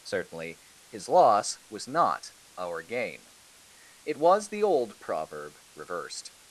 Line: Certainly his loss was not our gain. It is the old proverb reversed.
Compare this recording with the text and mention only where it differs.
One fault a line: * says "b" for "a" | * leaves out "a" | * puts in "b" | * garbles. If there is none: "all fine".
* says "was" for "is"